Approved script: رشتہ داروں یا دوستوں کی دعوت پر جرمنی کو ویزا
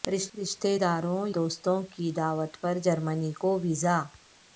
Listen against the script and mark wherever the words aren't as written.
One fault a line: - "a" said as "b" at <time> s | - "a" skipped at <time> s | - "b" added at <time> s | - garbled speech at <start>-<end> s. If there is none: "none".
- "یا" skipped at 1.2 s